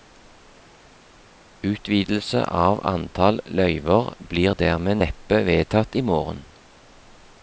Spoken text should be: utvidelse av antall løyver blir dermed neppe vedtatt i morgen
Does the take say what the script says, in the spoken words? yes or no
yes